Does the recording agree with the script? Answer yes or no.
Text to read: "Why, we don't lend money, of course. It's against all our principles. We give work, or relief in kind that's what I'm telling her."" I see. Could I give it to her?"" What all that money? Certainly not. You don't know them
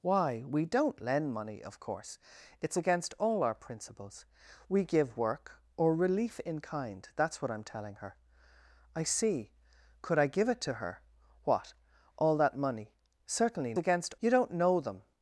no